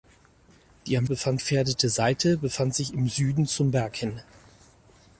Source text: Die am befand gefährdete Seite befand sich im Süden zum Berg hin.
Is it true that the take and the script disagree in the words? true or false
false